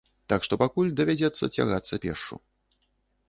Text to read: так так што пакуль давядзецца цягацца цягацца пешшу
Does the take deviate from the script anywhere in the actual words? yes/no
yes